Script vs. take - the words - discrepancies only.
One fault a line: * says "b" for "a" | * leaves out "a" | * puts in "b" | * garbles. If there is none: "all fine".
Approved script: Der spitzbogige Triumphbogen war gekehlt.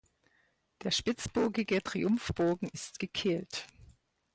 * says "ist" for "war"